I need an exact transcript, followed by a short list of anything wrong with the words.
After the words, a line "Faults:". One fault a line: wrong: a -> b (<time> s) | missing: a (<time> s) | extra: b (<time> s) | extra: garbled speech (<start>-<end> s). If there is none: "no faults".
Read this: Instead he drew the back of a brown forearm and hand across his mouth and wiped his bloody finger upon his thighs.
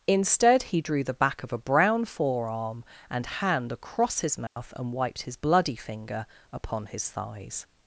Instead he drew the back of a brown forearm and hand across his mouth and wiped his bloody finger upon his thighs.
Faults:
no faults